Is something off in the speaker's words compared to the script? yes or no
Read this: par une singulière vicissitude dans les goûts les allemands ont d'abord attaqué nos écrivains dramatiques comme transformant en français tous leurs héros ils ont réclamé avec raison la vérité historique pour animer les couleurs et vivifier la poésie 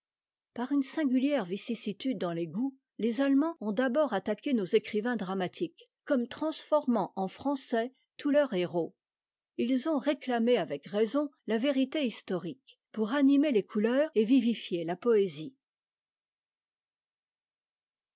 no